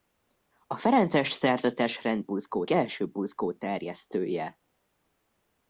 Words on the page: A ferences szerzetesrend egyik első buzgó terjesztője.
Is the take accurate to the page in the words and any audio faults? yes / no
no